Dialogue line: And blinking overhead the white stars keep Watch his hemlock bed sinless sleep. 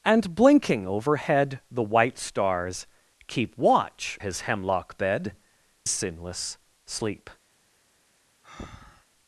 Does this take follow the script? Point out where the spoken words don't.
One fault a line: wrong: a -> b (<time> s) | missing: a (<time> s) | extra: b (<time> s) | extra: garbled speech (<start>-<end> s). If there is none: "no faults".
no faults